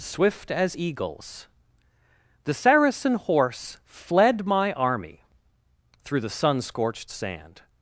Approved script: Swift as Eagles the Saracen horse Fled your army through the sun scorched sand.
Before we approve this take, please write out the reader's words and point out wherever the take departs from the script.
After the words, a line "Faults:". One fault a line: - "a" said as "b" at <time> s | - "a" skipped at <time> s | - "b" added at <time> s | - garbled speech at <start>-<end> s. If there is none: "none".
Swift as Eagles the Saracen horse Fled my army through the sun scorched sand.
Faults:
- "your" said as "my" at 4.5 s